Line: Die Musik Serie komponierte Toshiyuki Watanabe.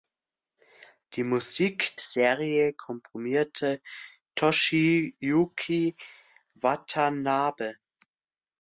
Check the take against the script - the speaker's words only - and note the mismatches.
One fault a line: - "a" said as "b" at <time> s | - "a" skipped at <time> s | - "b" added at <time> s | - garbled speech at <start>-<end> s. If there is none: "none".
none